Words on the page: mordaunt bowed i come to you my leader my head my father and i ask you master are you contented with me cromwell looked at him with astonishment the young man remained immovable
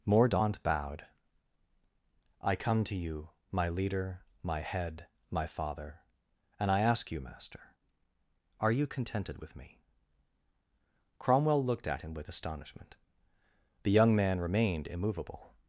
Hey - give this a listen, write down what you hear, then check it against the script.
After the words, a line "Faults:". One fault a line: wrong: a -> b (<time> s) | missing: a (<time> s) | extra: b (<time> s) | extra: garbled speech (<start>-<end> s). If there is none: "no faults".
mordaunt bowed i come to you my leader my head my father and i ask you master are you contented with me cromwell looked at him with astonishment the young man remained immovable
Faults:
no faults